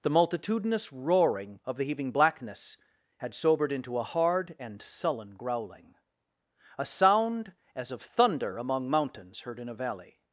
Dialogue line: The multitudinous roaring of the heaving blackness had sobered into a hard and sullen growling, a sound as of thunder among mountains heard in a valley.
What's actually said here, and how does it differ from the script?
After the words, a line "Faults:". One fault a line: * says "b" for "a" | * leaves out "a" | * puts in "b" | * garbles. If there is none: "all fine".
The multitudinous roaring of the heaving blackness had sobered into a hard and sullen growling, a sound as of thunder among mountains heard in a valley.
Faults:
all fine